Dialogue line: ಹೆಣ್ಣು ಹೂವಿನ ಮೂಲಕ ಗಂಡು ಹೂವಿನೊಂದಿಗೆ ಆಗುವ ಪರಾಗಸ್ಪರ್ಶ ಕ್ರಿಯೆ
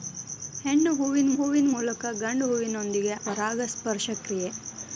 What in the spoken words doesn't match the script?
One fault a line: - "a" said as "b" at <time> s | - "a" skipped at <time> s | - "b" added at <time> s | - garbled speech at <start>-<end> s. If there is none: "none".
- "ಹೂವಿನ" added at 1.3 s
- "ಆಗುವ" skipped at 3.1 s